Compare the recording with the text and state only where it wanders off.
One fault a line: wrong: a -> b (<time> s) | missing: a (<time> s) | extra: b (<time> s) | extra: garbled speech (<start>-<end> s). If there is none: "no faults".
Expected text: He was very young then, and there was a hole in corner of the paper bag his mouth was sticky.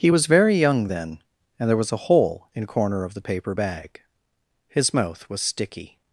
no faults